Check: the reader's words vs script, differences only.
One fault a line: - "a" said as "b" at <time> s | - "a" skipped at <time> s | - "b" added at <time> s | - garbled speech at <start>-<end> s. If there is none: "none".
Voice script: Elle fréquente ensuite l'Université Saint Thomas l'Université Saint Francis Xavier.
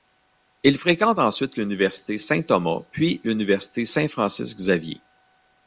- "Elle" said as "Il" at 0.6 s
- "puis" added at 2.9 s